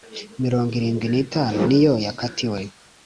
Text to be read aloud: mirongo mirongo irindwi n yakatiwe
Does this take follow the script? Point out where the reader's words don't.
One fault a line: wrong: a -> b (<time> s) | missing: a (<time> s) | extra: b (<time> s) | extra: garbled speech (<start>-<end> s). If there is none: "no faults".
missing: mirongo (0.7 s)
extra: itanu niyo (1.2 s)